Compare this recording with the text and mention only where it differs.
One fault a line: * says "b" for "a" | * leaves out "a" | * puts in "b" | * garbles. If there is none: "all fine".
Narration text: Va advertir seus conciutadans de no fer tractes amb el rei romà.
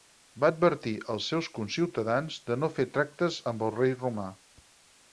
* puts in "als"